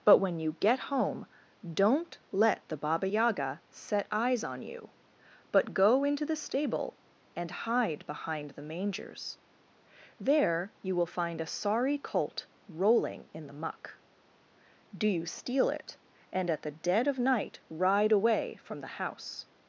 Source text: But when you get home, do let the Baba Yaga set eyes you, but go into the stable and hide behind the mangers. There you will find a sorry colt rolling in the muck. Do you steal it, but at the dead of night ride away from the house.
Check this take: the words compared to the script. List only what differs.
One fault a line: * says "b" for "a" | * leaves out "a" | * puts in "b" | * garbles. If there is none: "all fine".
* says "don't" for "do"
* puts in "on"
* says "and" for "but"